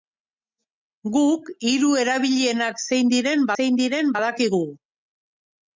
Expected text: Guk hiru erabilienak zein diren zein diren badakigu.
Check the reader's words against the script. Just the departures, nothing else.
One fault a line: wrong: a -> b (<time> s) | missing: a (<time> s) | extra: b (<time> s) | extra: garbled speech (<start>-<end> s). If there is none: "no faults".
no faults